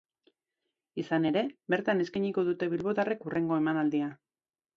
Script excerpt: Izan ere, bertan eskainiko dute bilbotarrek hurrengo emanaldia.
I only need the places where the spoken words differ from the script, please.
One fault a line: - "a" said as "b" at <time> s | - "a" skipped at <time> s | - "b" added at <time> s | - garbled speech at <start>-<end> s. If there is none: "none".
none